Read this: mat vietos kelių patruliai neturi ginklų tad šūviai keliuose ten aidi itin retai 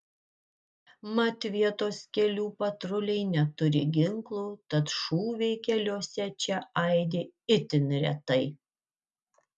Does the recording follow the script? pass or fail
fail